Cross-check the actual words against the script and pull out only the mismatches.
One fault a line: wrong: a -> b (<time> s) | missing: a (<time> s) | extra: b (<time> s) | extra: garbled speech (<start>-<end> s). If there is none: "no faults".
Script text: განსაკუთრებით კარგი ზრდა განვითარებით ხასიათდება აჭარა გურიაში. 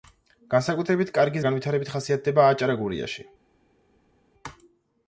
missing: ზრდა (1.4 s)